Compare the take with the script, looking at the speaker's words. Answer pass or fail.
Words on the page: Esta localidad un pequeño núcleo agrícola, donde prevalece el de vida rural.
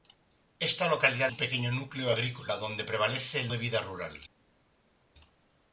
pass